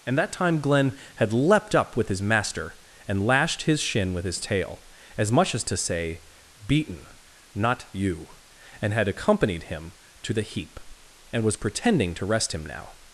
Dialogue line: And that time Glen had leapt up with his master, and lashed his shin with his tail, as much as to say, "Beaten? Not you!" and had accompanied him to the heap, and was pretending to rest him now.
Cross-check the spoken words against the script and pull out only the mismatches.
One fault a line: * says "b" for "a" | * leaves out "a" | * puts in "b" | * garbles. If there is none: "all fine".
all fine